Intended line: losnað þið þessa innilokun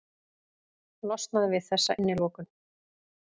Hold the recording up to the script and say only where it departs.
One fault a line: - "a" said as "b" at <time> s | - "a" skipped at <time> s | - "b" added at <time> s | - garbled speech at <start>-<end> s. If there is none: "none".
- "þið" said as "við" at 1.5 s